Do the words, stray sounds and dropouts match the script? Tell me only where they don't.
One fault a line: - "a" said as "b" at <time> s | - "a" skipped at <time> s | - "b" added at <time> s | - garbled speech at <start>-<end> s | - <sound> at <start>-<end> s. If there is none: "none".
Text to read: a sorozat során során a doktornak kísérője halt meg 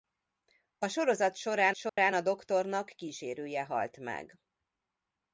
- dropout at 1.9-2.0 s